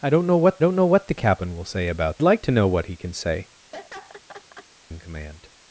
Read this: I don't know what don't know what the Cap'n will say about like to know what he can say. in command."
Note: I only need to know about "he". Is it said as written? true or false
true